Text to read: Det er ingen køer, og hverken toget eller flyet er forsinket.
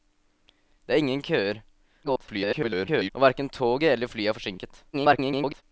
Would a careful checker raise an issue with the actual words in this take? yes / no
yes